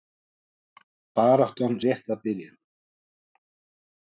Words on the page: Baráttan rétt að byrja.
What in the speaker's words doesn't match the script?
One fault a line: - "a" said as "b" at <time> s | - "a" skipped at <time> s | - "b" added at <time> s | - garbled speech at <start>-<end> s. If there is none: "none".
none